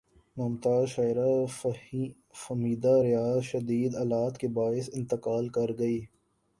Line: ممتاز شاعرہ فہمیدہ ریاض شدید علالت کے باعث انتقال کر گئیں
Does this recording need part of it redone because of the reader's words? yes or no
no